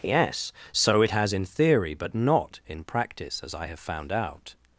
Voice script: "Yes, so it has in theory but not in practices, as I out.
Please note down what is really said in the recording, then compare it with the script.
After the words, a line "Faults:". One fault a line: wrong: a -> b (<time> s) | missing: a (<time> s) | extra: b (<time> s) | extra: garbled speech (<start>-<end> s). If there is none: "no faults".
"Yes, so it has in theory but not in practice, as I have found out.
Faults:
wrong: practices -> practice (2.8 s)
extra: have found (3.7 s)